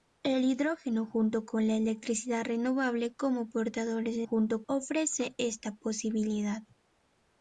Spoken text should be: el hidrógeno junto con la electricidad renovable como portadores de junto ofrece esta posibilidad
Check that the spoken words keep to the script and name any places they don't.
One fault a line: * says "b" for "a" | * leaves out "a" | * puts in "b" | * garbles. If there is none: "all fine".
all fine